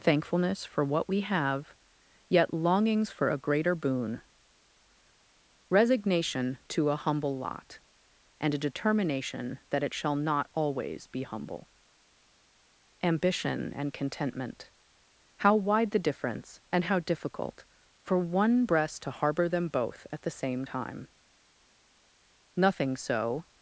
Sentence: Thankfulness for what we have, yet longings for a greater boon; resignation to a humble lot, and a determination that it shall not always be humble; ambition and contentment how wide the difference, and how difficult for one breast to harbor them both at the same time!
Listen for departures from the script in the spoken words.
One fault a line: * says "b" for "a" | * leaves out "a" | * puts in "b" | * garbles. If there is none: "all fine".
* puts in "Nothing so"